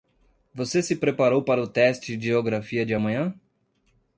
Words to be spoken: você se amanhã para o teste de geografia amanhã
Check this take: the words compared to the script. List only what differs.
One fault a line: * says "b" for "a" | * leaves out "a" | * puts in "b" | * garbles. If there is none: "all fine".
* says "preparou" for "amanhã"
* puts in "de"